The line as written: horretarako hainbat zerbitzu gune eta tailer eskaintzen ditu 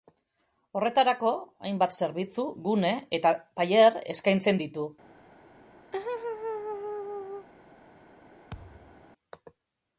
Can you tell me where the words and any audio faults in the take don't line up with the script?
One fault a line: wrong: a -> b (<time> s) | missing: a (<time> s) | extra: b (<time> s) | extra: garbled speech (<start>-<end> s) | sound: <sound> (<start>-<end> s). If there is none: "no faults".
sound: laugh (5.9-7.5 s)
sound: thud (8.5-9.1 s)